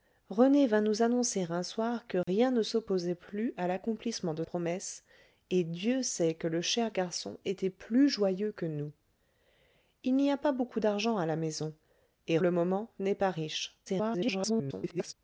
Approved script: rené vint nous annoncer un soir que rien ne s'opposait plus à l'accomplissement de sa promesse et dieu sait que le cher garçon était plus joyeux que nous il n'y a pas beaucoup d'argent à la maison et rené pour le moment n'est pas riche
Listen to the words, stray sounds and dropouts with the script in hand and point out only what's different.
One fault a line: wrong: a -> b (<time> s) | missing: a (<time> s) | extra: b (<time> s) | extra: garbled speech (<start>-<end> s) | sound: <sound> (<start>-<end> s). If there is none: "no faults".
sound: dropout (2.2-2.3 s)
missing: sa (4.4 s)
missing: rené pour (12.4 s)
extra: garbled speech (13.9-15.1 s)